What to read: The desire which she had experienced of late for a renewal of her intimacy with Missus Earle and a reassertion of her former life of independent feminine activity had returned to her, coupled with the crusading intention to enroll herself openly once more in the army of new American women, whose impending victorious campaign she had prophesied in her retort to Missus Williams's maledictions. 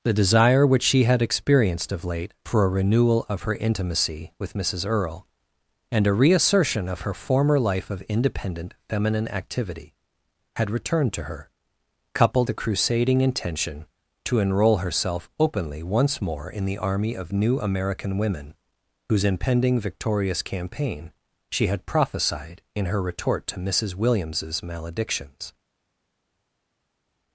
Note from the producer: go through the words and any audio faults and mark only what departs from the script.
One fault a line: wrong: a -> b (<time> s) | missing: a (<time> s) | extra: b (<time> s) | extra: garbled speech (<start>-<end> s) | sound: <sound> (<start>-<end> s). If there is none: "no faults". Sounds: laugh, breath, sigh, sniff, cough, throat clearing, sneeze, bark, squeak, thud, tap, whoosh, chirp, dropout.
missing: with (12.5 s)